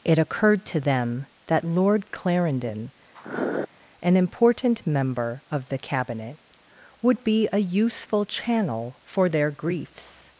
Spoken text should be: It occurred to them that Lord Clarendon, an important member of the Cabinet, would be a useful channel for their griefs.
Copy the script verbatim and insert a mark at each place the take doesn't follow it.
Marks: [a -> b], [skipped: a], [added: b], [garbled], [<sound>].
It occurred to them that Lord Clarendon, [sniff] an important member of the Cabinet, would be a useful channel for their griefs.